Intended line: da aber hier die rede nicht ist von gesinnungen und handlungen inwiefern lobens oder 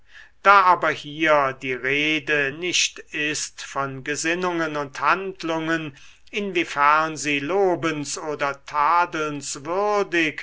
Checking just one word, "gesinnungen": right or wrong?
right